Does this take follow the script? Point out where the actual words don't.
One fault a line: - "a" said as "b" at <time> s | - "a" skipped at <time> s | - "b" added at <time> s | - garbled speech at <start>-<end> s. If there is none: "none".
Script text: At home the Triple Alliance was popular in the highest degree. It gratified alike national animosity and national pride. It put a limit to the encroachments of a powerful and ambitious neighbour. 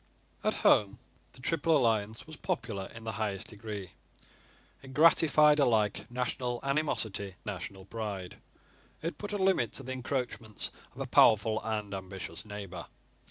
- "and" skipped at 7.4 s